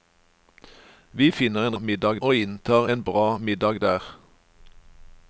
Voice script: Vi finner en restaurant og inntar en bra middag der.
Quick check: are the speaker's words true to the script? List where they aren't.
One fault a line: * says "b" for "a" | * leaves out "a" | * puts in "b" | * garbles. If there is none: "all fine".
* says "middag" for "restaurant"